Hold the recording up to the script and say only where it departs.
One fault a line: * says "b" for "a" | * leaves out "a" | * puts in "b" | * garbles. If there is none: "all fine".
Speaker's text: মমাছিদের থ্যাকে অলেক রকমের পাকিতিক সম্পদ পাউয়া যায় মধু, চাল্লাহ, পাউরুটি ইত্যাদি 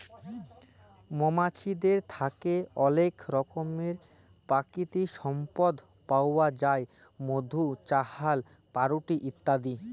all fine